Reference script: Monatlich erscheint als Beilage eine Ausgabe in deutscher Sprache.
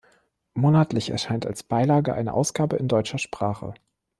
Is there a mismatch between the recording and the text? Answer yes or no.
no